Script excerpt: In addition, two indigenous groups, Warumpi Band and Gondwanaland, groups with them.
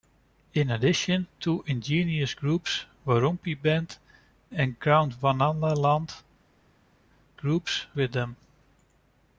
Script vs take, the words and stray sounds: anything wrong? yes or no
no